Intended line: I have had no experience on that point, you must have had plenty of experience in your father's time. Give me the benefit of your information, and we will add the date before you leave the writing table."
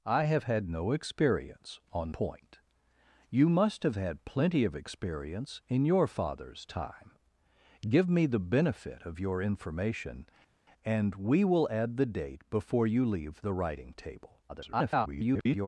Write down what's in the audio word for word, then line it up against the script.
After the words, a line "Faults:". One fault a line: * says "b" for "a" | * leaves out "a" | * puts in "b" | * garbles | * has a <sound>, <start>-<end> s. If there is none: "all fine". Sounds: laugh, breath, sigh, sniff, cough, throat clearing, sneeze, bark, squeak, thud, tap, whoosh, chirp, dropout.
I have had no experience on point, you must have had plenty of experience in your father's time. Give me the benefit of your information, and we will add the date before you leave the writing table." [garbled]
Faults:
* leaves out "that"
* garbles